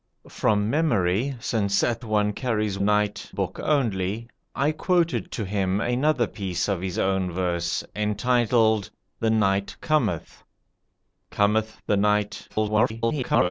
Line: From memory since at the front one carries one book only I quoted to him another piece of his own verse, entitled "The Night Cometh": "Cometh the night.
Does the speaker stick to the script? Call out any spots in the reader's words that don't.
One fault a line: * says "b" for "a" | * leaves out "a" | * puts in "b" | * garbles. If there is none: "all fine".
* leaves out "the front"
* says "night" for "one"
* garbles